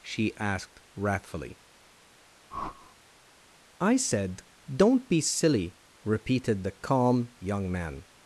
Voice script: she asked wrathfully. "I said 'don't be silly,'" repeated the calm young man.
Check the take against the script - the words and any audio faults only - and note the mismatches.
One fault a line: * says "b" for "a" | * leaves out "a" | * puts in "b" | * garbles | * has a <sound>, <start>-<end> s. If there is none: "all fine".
* has a whoosh, 2.5-3.0 s